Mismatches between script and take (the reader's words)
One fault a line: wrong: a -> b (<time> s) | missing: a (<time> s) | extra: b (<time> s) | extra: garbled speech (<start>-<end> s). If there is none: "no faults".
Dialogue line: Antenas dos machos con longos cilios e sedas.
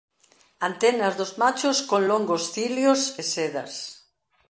no faults